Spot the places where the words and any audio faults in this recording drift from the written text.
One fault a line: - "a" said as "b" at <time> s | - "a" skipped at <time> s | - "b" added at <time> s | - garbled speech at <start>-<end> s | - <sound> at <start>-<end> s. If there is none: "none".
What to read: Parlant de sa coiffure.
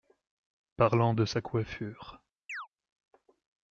- chirp at 2.5-2.7 s